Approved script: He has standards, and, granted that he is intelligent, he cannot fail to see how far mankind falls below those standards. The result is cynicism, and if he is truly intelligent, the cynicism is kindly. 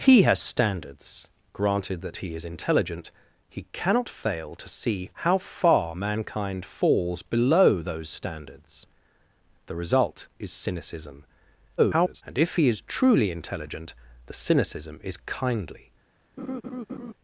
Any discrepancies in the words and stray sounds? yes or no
yes